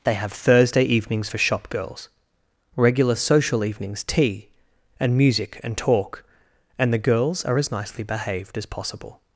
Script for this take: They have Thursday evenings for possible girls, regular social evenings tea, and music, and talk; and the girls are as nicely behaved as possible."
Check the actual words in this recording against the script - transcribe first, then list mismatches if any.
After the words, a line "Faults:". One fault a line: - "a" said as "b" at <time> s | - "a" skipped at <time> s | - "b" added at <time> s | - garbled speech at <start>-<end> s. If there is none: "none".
They have Thursday evenings for shop girls, regular social evenings tea, and music, and talk; and the girls are as nicely behaved as possible."
Faults:
- "possible" said as "shop" at 1.4 s